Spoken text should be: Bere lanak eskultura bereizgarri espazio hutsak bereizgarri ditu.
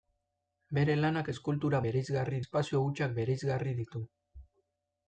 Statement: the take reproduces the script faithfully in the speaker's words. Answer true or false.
true